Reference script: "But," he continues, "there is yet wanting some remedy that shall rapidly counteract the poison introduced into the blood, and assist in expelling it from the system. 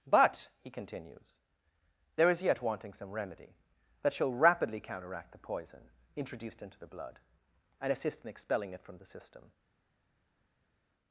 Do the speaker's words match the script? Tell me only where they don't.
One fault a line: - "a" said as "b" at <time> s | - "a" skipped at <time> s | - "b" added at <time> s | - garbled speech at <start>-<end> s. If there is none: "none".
none